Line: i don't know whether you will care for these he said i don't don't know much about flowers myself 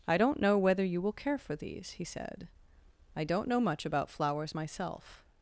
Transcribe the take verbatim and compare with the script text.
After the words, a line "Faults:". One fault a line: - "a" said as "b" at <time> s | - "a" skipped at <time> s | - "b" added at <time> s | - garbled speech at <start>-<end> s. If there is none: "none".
i don't know whether you will care for these he said i don't know much about flowers myself
Faults:
- "don't" skipped at 3.5 s